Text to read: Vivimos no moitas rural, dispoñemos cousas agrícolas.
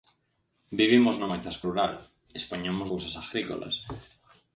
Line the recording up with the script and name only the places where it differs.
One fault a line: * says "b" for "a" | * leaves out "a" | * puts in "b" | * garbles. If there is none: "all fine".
all fine